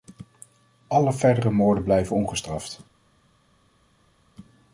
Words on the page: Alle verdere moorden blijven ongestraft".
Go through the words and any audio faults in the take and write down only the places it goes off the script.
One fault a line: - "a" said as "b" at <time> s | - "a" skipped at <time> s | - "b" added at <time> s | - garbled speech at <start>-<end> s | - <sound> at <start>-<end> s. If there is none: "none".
none